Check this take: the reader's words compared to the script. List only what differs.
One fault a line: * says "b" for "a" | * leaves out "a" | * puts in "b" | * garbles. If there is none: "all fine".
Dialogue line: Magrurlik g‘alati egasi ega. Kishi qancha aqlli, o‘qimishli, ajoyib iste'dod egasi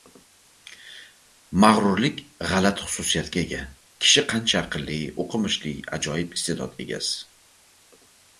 * says "xususiyatga" for "egasi"